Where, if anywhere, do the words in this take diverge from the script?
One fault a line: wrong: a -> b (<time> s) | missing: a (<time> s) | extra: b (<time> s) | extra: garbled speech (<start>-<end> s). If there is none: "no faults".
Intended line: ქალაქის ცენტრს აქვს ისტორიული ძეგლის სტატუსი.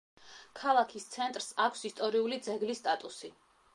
no faults